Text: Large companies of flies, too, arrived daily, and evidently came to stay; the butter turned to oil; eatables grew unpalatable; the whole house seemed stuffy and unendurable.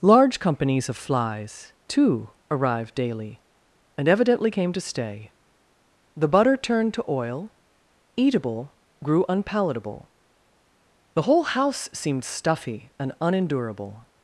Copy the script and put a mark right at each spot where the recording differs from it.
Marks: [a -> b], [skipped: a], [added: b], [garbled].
Large companies of flies, too, arrived daily, and evidently came to stay; the butter turned to oil; [eatables -> eatable] grew unpalatable; the whole house seemed stuffy and unendurable.